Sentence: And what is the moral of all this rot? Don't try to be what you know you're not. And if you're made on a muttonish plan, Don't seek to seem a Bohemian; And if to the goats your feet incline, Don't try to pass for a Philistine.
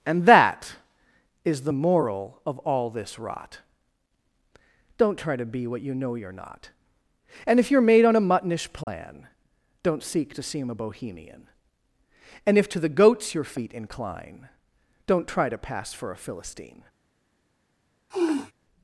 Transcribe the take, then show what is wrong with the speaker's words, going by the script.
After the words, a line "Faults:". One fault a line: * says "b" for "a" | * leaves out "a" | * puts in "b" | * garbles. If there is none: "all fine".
And that is the moral of all this rot? Don't try to be what you know you're not. And if you're made on a muttonish plan, Don't seek to seem a Bohemian; And if to the goats your feet incline, Don't try to pass for a Philistine.
Faults:
* says "that" for "what"